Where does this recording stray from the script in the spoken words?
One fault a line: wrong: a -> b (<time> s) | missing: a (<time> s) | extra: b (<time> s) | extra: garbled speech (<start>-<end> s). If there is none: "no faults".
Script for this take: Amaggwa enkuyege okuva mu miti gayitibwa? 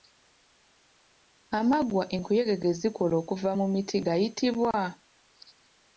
extra: ge zikola (2.6 s)